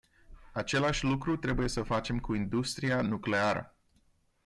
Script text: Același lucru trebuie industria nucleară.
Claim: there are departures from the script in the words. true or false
true